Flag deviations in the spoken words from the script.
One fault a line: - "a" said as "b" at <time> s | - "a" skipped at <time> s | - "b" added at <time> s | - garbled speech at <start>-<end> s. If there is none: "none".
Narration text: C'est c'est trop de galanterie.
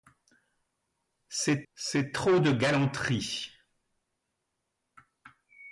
none